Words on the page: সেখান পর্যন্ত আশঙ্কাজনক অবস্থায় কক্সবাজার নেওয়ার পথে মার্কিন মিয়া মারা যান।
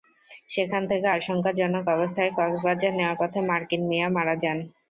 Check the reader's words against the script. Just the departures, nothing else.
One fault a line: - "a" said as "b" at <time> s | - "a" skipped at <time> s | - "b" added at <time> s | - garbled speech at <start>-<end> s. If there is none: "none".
- "পর্যন্ত" said as "থেকে" at 0.9 s